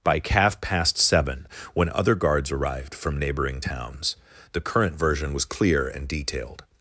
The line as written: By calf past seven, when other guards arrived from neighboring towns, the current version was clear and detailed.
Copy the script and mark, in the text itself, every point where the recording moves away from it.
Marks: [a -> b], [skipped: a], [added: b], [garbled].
By calf past seven, when other guards arrived from neighboring towns, the current version was clear and detailed.